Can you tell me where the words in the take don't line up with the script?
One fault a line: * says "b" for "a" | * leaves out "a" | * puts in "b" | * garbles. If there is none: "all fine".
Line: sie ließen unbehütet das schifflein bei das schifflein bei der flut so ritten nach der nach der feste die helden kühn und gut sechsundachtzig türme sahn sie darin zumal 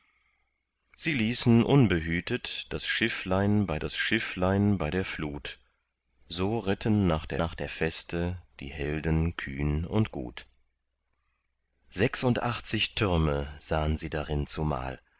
all fine